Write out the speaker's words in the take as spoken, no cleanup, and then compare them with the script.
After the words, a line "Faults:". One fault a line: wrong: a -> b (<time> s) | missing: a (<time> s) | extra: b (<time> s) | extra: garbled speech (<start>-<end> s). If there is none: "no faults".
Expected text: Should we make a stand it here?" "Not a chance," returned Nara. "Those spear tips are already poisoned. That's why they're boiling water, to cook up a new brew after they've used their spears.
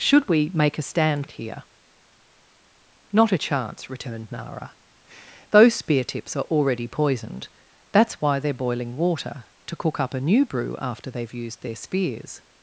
Should we make a stand it here?" "Not a chance," returned Nara. "Those spear tips are already poisoned. That's why they're boiling water, to cook up a new brew after they've used their spears.
Faults:
no faults